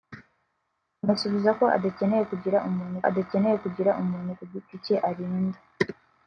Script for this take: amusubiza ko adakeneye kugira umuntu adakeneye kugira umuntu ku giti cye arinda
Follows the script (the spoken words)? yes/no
yes